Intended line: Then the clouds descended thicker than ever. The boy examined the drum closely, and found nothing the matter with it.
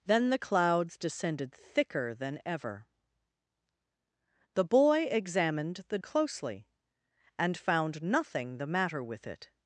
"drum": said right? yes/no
no